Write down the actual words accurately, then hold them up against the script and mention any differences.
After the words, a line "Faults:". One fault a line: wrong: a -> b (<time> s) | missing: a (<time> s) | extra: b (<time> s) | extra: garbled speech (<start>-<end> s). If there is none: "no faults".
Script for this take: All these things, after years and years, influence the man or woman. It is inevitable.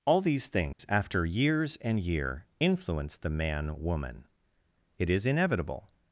All these things, after years and year, influence the man woman. It is inevitable.
Faults:
wrong: years -> year (2.0 s)
missing: or (3.8 s)